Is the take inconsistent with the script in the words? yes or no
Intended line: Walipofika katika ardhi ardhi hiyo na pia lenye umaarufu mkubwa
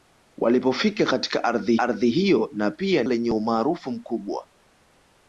no